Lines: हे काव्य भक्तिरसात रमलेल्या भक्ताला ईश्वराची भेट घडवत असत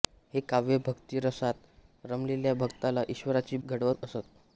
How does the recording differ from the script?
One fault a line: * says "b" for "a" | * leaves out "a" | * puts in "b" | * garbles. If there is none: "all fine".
* leaves out "भेट"